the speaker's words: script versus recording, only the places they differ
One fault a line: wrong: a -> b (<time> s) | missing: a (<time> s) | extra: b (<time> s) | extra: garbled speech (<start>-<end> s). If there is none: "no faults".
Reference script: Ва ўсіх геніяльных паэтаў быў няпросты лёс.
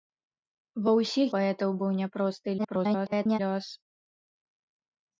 missing: геніяльных (1.3 s)
extra: garbled speech (2.6-3.4 s)